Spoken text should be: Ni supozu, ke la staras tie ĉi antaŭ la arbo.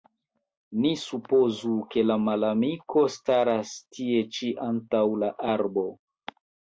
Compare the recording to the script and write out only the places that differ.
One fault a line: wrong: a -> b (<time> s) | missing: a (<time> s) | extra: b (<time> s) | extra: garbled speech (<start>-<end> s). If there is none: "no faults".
extra: malamiko (2.3 s)